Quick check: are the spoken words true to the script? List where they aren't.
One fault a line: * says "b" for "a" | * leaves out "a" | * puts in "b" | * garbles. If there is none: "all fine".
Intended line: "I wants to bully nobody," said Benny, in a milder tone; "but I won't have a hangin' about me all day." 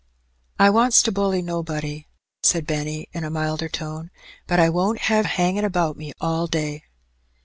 all fine